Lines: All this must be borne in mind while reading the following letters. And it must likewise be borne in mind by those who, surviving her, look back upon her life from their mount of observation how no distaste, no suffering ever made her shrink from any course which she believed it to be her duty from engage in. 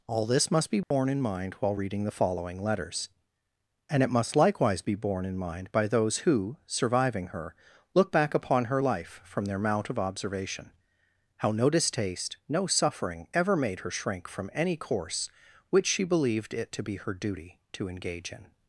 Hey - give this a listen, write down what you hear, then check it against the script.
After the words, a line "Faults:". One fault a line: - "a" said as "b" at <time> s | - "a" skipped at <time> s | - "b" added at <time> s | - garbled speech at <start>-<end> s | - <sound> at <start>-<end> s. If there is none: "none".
All this must be borne in mind while reading the following letters. And it must likewise be borne in mind by those who, surviving her, look back upon her life from their mount of observation how no distaste, no suffering ever made her shrink from any course which she believed it to be her duty to engage in.
Faults:
- dropout at 0.8-0.9 s
- "from" said as "to" at 17.7 s